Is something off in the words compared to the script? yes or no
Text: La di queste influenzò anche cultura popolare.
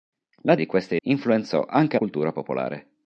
no